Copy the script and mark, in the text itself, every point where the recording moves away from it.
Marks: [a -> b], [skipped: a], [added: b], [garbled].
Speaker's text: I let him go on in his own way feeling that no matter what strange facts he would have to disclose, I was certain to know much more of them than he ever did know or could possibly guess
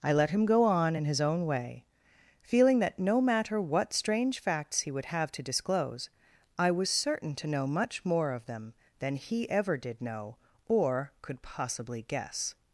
I let him go on in his own way feeling that no matter what strange facts he would have to disclose, I was certain to know much more of them than he ever did know or could possibly guess